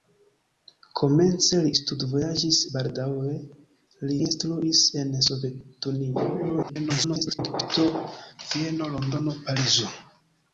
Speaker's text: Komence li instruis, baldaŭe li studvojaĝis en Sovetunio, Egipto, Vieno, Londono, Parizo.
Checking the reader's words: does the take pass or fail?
fail